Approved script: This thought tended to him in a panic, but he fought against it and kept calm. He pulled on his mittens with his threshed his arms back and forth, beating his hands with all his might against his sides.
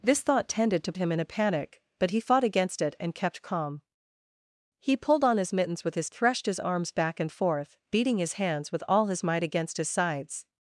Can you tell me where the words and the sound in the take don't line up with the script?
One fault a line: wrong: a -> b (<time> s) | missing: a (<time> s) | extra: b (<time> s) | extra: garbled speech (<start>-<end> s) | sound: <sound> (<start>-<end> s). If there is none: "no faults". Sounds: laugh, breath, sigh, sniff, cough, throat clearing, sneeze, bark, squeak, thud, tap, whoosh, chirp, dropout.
no faults